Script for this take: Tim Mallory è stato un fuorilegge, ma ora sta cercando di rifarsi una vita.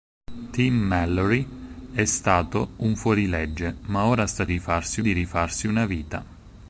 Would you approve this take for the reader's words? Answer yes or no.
no